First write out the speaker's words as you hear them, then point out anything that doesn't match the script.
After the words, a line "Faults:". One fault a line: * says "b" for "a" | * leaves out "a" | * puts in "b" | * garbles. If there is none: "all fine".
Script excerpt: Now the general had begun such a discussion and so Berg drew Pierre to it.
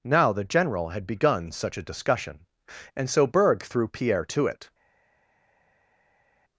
Now the general had begun such a discussion and so Berg threw Pierre to it.
Faults:
* says "threw" for "drew"